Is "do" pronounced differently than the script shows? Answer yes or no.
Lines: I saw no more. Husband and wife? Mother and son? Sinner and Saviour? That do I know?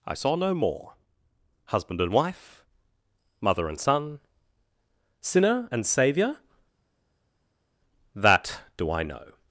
no